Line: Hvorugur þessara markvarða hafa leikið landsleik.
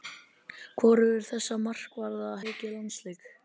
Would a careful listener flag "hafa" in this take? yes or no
yes